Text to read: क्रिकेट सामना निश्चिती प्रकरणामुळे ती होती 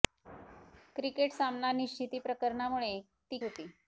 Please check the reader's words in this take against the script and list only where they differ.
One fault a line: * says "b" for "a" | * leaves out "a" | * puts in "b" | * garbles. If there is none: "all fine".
all fine